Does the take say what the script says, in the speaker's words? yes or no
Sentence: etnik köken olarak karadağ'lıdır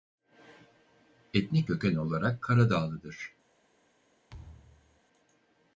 yes